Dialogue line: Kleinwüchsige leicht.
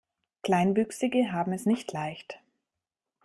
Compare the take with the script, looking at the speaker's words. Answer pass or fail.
fail